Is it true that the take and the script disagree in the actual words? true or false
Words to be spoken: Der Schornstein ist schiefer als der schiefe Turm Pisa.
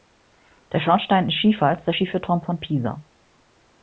true